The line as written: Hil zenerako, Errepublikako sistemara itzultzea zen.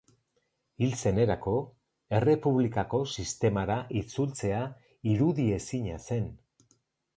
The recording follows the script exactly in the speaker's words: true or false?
false